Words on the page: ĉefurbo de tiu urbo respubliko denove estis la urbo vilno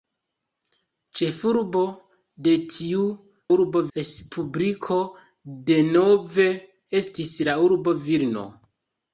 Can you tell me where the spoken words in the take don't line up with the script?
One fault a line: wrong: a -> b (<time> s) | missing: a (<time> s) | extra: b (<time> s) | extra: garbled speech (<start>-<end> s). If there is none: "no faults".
no faults